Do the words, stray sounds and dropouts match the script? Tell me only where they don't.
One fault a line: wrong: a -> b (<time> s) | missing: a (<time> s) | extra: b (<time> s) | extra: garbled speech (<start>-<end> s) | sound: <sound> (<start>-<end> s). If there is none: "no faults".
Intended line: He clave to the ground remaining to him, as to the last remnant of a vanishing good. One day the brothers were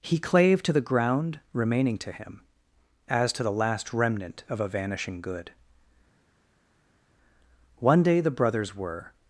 no faults